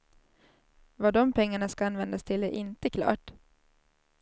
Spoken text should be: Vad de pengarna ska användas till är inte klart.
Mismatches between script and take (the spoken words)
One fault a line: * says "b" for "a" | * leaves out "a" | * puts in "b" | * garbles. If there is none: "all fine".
all fine